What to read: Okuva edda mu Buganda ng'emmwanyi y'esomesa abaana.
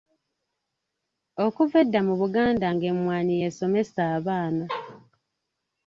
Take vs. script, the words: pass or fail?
pass